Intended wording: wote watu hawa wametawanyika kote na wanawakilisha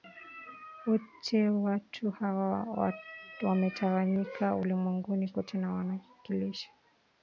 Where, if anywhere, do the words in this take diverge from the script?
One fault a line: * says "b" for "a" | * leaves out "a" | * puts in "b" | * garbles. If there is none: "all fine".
* puts in "ulimwenguni"